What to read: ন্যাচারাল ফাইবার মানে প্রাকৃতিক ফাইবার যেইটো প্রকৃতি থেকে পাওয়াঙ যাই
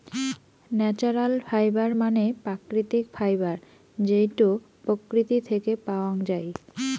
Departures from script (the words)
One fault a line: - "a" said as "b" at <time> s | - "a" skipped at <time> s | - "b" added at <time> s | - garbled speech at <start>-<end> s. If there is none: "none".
none